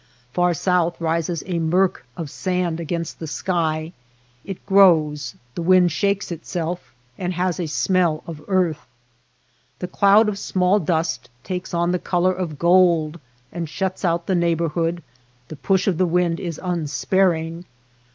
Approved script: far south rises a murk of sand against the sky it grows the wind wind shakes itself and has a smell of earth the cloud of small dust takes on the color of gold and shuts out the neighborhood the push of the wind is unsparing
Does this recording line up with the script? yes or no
no